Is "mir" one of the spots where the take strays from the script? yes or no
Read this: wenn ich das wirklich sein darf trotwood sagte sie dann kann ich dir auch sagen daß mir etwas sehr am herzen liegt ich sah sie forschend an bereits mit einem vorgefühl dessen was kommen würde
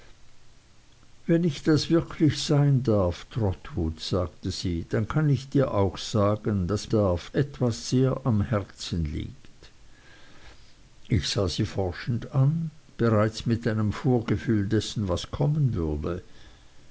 yes